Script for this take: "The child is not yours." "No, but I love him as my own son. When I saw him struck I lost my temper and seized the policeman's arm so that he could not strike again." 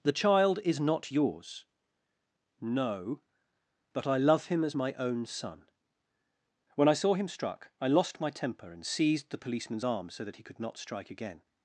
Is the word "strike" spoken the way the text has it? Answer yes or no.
yes